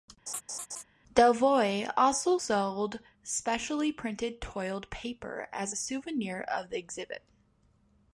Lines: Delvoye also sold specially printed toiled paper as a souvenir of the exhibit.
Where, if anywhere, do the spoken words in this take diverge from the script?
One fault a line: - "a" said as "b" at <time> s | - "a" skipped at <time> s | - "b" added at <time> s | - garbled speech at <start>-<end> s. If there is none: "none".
none